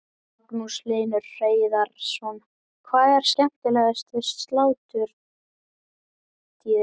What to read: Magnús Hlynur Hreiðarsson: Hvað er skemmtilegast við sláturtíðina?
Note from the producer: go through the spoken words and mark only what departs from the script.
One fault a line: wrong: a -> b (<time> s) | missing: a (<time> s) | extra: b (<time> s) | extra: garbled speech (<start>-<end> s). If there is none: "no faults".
no faults